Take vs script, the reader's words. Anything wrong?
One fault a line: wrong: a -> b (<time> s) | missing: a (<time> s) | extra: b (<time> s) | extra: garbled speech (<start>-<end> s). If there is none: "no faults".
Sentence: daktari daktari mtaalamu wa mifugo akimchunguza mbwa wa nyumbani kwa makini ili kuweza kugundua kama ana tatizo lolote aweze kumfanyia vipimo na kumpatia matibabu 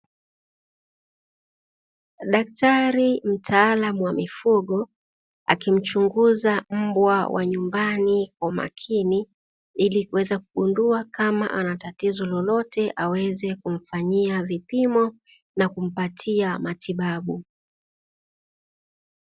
missing: daktari (3.2 s)